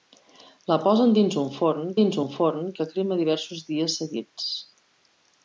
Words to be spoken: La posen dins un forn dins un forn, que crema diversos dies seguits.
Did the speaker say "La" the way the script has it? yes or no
yes